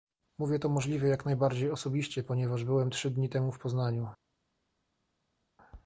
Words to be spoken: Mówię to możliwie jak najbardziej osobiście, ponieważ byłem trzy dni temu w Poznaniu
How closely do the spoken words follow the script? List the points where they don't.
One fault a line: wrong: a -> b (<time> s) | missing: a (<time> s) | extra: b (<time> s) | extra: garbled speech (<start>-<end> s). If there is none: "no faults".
no faults